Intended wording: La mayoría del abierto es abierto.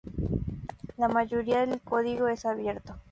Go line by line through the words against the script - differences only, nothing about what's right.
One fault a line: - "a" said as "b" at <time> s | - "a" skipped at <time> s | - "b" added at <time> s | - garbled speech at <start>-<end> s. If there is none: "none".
- "abierto" said as "código" at 1.8 s